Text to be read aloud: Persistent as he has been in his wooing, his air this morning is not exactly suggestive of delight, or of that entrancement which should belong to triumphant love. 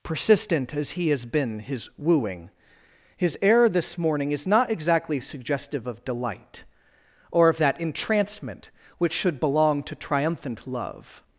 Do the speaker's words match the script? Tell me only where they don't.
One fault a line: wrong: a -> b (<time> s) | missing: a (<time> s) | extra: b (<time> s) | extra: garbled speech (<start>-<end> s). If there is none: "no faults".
missing: in (1.6 s)